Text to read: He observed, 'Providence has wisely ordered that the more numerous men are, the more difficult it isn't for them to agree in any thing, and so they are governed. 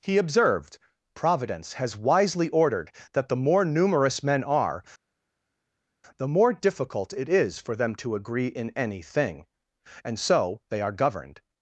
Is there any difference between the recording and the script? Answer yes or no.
yes